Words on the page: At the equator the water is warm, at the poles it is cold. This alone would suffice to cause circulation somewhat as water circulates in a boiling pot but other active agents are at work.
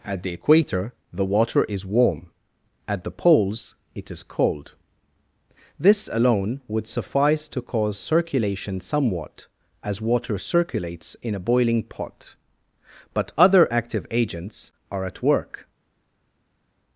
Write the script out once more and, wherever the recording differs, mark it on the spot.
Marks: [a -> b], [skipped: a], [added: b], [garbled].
At the equator the water is warm, at the poles it is cold. This alone would suffice to cause circulation somewhat as water circulates in a boiling pot but other active agents are at work.